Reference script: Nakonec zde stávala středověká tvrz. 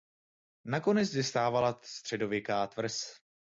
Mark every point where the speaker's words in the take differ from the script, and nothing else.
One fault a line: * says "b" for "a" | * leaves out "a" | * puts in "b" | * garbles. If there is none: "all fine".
all fine